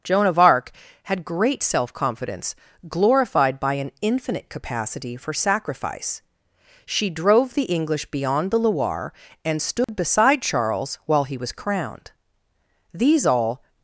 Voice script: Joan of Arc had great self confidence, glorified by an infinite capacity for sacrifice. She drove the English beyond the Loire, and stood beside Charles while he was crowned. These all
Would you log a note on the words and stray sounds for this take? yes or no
yes